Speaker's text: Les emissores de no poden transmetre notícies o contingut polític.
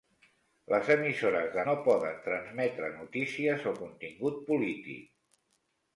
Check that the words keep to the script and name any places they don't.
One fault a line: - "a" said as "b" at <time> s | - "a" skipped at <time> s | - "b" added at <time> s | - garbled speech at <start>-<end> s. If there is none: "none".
none